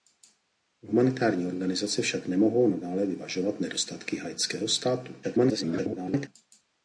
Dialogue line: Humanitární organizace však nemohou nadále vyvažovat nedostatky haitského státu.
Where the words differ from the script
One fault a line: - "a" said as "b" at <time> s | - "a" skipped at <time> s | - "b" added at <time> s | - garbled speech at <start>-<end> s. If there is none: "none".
- garbled speech at 5.2-6.3 s